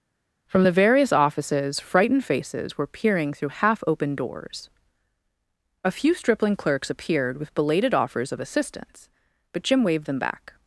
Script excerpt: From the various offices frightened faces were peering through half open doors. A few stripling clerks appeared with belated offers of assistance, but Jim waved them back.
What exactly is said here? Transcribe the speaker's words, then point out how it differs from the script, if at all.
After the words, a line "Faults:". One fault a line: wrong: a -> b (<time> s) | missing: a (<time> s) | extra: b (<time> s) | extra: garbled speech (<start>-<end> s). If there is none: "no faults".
From the various offices frightened faces were peering through half open doors. A few stripling clerks appeared with belated offers of assistance, but Jim waved them back.
Faults:
no faults